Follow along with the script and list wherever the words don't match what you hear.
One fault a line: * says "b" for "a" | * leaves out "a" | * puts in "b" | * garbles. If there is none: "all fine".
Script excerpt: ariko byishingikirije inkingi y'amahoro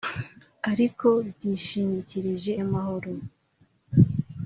* leaves out "inkingi"